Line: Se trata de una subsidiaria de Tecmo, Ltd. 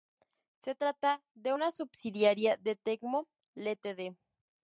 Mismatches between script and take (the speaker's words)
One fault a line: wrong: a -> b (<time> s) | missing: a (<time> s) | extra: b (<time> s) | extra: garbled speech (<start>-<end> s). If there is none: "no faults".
no faults